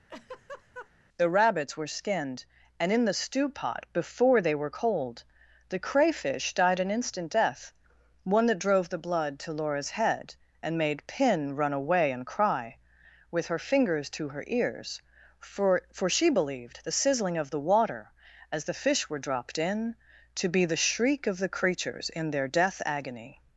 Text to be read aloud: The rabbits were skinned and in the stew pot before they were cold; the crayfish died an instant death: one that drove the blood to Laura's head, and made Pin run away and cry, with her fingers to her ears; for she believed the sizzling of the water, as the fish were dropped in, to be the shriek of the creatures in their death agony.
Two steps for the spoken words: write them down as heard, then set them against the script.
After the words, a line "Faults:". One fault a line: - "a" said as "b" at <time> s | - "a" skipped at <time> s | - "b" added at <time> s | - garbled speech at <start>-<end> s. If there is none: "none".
The rabbits were skinned and in the stew pot before they were cold; the crayfish died an instant death: one that drove the blood to Laura's head, and made Pin run away and cry, with her fingers to her ears; for for she believed the sizzling of the water, as the fish were dropped in, to be the shriek of the creatures in their death agony.
Faults:
- "for" added at 15.9 s